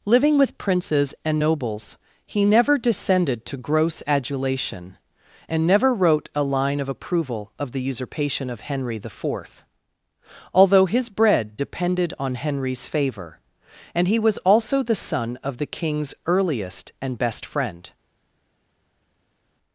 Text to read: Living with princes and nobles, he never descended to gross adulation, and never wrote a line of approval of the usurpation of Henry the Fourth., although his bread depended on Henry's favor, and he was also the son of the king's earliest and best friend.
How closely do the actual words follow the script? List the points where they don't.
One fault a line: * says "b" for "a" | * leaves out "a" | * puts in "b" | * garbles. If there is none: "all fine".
all fine